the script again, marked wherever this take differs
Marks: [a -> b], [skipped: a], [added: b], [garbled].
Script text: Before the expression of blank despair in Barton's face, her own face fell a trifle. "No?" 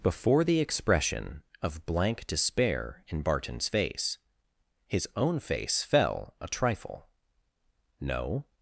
Before the expression of blank despair in Barton's face, [her -> his] own face fell a trifle. "No?"